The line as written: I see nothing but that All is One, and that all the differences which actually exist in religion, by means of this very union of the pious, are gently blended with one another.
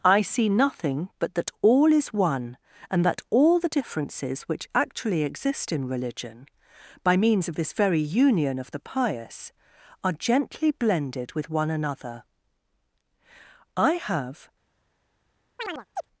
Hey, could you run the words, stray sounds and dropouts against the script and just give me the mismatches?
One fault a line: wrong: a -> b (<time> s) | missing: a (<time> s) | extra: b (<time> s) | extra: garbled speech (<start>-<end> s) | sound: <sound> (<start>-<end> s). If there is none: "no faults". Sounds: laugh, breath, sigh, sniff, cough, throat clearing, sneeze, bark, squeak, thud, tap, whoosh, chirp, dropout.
extra: I have (13.8 s)
sound: chirp (15.6-16.1 s)